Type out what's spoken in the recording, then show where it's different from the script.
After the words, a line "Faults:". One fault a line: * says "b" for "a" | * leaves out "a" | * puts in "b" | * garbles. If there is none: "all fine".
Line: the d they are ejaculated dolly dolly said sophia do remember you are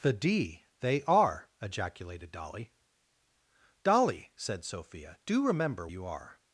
the d they are ejaculated dolly dolly said sophia do remember you are
Faults:
all fine